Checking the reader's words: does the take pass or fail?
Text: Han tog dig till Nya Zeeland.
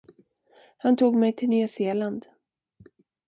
fail